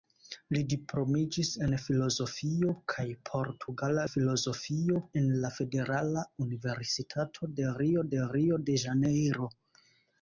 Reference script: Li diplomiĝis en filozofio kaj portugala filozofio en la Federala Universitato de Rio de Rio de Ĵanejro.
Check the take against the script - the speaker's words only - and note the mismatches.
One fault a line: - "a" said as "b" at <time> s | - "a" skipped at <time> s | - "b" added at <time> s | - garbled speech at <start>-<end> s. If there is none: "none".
none